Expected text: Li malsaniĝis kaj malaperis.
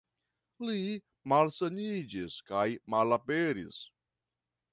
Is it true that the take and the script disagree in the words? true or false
false